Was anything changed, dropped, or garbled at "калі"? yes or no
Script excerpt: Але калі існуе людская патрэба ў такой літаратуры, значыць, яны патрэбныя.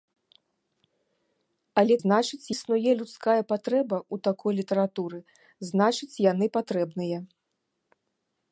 yes